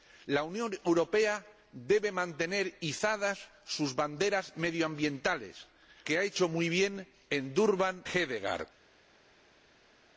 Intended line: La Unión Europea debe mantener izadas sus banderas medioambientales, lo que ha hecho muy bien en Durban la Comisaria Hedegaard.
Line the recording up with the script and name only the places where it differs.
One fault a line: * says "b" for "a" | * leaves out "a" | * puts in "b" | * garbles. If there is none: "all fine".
* leaves out "lo"
* leaves out "la Comisaria"